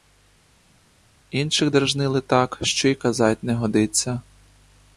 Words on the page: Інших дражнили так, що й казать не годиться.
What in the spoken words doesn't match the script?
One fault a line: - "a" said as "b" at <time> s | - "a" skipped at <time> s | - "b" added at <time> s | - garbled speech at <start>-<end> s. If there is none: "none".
none